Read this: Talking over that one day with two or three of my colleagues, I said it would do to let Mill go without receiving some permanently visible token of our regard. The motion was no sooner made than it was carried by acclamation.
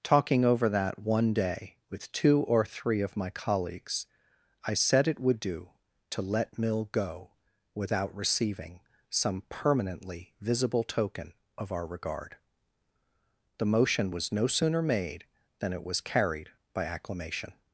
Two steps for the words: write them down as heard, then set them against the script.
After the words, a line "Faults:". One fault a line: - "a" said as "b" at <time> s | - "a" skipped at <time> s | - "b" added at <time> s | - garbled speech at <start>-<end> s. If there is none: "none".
Talking over that one day with two or three of my colleagues, I said it would do to let Mill go without receiving some permanently visible token of our regard. The motion was no sooner made than it was carried by acclamation.
Faults:
none